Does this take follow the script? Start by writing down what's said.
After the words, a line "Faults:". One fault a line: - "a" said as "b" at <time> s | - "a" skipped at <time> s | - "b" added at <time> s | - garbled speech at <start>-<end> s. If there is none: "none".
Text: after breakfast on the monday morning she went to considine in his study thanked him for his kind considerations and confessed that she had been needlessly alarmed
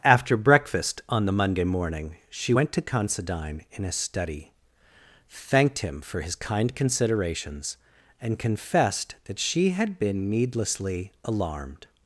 after breakfast on the monday morning she went to considine in his study thanked him for his kind considerations and confessed that she had been needlessly alarmed
Faults:
none